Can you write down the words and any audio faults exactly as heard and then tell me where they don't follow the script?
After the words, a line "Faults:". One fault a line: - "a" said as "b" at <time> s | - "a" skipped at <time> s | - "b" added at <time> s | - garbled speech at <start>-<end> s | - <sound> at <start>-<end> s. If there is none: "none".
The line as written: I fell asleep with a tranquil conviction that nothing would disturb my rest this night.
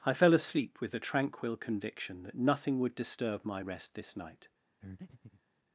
I fell asleep with a tranquil conviction that nothing would disturb my rest this night.
Faults:
- breath at 4.8-5.4 s